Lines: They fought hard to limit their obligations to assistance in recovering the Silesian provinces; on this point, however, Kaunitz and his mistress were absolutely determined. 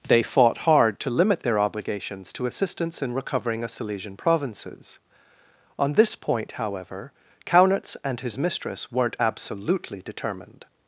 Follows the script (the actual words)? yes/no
no